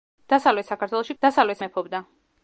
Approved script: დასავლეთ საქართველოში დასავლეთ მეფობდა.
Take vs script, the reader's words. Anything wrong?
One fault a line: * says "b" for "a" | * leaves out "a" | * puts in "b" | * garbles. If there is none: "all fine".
all fine